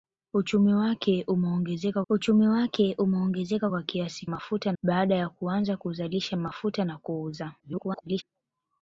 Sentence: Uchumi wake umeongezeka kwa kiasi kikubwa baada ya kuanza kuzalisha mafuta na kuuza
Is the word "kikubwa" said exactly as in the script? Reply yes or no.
no